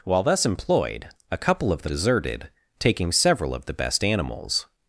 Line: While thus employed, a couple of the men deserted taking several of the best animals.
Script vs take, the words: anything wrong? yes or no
yes